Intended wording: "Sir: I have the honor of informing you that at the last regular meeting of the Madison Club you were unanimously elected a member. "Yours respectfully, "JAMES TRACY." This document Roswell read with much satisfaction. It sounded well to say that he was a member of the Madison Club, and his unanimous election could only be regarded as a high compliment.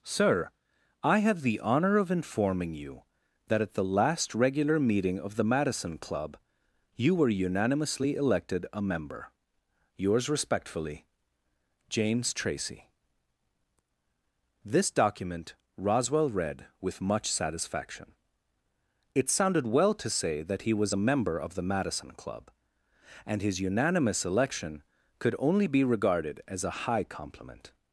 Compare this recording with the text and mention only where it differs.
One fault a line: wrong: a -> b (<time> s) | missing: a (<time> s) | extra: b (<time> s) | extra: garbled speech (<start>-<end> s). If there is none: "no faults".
no faults